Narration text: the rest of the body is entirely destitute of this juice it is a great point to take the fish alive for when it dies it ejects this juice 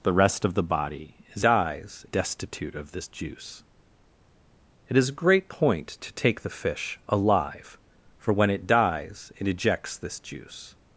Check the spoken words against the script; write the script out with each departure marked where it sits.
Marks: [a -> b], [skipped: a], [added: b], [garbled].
the rest of the body is [entirely -> dies] destitute of this juice it is a great point to take the fish alive for when it dies it ejects this juice